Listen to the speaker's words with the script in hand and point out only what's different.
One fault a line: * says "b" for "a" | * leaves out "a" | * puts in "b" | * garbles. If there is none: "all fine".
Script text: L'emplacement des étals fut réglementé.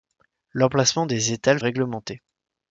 * leaves out "fut"